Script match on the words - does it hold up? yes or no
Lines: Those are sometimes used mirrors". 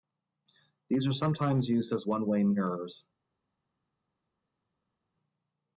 no